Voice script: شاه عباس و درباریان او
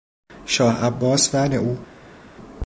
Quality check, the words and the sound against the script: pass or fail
fail